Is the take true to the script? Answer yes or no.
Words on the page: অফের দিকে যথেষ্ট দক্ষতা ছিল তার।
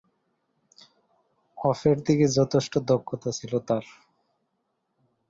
yes